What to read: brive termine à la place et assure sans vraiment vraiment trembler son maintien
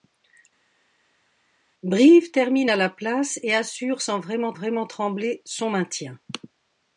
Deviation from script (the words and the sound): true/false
false